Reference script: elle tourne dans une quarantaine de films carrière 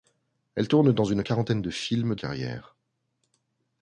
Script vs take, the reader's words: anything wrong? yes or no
no